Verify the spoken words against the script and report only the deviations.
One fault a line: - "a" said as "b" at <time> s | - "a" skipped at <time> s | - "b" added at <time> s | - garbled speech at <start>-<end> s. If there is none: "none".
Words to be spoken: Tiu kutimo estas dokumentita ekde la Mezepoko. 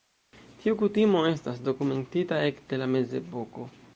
none